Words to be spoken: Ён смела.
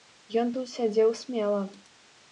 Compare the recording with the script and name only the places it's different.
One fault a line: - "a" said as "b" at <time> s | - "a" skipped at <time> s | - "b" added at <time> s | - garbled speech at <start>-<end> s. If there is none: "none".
- "тут сядзеў" added at 0.5 s